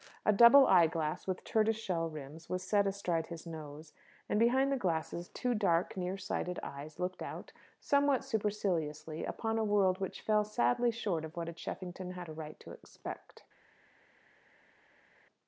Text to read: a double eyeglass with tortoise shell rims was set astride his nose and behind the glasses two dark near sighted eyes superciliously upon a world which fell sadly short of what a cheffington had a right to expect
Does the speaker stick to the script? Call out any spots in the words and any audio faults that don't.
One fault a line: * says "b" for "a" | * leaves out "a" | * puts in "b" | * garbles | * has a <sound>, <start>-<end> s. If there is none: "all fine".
* puts in "looked out somewhat"